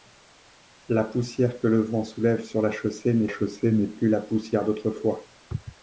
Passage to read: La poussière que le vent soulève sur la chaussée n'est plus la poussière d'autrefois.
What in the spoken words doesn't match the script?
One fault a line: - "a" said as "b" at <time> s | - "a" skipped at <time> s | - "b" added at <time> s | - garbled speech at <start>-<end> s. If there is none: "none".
- "chaussée n'est" added at 3.3 s